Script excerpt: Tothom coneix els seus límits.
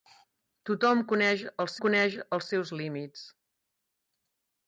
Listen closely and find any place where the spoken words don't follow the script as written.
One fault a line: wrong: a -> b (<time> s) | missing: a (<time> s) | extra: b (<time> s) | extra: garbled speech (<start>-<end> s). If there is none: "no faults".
extra: coneix els (1.8 s)